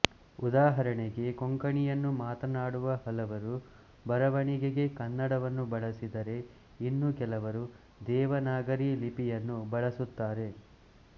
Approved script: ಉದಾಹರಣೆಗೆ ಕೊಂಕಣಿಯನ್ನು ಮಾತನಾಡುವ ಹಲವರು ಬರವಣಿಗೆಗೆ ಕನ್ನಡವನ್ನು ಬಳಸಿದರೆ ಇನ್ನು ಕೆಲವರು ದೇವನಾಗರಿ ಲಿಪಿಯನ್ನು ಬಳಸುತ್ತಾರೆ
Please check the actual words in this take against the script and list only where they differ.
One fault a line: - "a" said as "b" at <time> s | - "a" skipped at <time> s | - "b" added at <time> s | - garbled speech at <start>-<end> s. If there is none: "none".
none